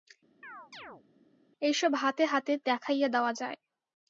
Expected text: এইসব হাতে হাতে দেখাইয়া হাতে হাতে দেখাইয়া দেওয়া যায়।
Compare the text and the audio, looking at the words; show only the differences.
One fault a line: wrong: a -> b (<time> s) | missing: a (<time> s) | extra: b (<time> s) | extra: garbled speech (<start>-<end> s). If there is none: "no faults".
missing: হাতে হাতে দেখাইয়া (3.1 s)